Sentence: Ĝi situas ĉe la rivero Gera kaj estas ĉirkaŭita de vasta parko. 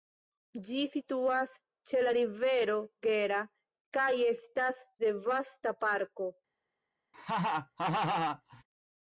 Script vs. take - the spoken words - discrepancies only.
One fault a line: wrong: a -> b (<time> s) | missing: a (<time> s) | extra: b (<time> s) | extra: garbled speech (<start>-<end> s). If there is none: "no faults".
missing: ĉirkaŭita (4.8 s)